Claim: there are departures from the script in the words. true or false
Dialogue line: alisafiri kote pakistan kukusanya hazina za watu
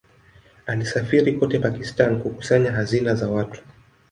false